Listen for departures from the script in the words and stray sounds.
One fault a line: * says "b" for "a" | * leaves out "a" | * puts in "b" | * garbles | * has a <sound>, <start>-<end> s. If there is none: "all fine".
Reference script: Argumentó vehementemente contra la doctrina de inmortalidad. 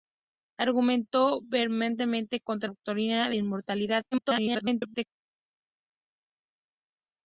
* leaves out "la"
* garbles